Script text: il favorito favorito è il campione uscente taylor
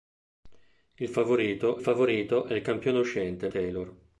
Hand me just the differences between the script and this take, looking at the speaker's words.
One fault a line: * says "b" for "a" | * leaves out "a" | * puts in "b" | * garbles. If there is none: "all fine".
all fine